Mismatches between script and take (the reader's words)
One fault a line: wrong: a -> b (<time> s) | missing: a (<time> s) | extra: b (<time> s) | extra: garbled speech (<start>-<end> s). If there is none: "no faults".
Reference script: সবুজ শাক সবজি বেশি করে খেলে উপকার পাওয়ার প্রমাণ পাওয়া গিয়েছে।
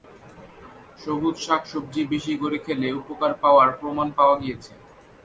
no faults